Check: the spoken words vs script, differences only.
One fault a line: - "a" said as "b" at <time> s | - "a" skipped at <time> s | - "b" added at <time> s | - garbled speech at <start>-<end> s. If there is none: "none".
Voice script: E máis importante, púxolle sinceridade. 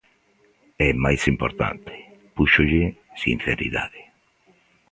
none